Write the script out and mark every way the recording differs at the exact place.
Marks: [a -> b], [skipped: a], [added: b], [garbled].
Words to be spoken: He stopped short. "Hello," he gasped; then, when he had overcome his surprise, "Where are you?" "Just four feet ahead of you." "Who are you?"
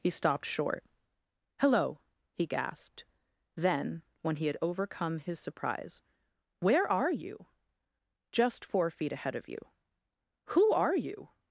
He stopped short. "Hello," he gasped; then, when he had overcome his surprise, "Where are you?" "Just four feet ahead of you." "Who are you?"